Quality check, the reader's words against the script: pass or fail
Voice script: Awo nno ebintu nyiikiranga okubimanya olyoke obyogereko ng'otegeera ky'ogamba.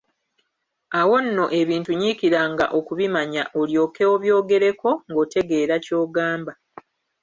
pass